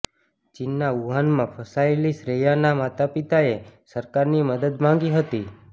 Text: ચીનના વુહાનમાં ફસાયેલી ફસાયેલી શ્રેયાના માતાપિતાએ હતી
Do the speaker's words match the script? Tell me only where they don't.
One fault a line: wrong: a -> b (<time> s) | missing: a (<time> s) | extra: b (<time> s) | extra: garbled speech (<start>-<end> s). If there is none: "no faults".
missing: ફસાયેલી (2.1 s)
extra: સરકારની મદદ માંગી (4.0 s)